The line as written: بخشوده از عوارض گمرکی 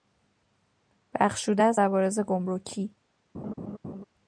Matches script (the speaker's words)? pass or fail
pass